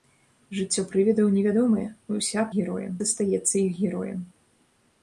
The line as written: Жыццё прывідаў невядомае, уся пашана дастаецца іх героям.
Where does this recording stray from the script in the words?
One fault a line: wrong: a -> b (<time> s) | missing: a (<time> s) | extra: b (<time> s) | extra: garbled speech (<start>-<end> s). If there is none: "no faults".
wrong: пашана -> героям (2.6 s)